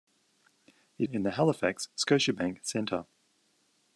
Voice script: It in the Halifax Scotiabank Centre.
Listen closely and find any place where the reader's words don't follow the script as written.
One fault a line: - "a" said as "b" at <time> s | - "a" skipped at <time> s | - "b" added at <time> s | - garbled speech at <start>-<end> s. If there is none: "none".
none